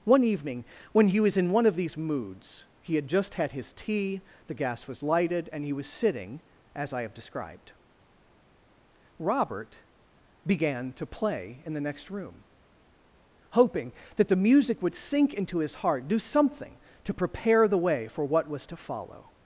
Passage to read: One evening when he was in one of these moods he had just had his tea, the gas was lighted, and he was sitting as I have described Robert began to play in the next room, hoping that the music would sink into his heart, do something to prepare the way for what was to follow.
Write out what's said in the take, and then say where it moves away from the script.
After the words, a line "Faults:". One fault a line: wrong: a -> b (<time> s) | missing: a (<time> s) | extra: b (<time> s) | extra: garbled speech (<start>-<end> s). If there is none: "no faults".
One evening when he was in one of these moods he had just had his tea, the gas was lighted, and he was sitting as I have described Robert began to play in the next room, hoping that the music would sink into his heart, do something to prepare the way for what was to follow.
Faults:
no faults